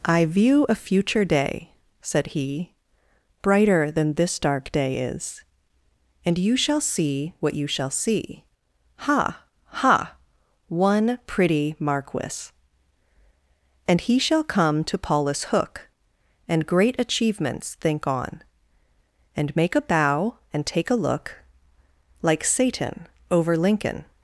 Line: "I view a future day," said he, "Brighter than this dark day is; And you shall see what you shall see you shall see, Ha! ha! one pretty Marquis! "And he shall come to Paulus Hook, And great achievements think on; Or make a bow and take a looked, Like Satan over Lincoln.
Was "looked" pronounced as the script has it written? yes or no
no